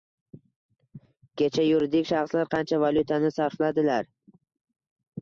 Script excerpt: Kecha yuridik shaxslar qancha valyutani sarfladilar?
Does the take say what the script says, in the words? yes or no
yes